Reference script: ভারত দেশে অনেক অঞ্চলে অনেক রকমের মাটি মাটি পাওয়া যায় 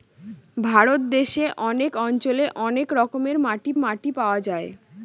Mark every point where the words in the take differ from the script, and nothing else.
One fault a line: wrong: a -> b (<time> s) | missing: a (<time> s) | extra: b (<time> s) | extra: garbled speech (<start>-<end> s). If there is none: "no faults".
no faults